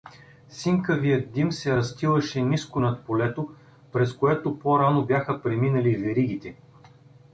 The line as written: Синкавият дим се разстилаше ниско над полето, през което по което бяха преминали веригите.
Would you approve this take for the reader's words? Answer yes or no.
no